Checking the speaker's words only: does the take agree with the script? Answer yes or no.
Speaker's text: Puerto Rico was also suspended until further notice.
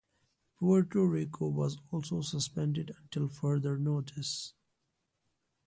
yes